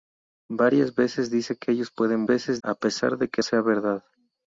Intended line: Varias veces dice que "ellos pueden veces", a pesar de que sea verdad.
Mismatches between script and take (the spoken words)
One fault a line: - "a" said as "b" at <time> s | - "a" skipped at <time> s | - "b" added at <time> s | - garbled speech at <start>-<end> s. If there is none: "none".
none